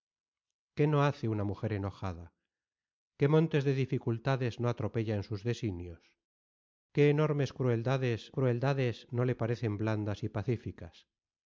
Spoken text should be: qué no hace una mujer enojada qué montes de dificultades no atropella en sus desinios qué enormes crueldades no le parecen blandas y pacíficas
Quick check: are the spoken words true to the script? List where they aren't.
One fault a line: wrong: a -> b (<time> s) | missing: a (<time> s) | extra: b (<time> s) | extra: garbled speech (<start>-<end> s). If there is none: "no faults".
extra: crueldades (8.3 s)